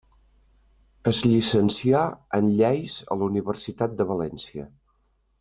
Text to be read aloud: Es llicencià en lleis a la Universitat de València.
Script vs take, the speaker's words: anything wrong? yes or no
no